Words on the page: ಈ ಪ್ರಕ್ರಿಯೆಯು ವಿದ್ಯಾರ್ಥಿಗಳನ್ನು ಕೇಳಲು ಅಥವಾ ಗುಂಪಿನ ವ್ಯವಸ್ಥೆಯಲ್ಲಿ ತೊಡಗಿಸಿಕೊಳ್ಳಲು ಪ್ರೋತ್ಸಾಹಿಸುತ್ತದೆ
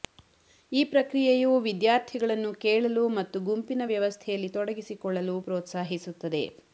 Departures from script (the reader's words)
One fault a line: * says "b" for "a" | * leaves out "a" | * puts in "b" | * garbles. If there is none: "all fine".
* says "ಮತ್ತು" for "ಅಥವಾ"